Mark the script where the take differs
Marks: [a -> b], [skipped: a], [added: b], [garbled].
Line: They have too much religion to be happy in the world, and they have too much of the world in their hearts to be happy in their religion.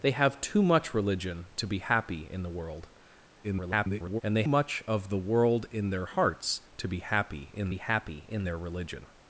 They have too much religion to be happy in the world, [garbled] and they [skipped: have too] much of the world in their hearts to be happy in [added: be happy in] their religion.